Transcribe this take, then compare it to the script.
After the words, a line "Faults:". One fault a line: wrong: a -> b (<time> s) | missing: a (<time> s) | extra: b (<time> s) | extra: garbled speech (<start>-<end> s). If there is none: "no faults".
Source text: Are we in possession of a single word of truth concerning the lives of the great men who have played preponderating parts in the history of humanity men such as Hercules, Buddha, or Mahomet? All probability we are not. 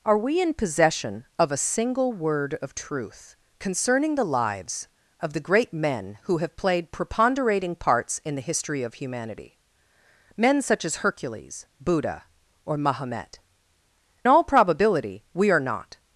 Are we in possession of a single word of truth concerning the lives of the great men who have played preponderating parts in the history of humanity men such as Hercules, Buddha, or Mahomet? All probability we are not.
Faults:
no faults